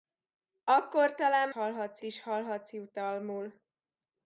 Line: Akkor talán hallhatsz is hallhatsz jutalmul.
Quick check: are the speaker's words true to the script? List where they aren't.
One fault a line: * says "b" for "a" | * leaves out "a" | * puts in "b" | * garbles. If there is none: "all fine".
all fine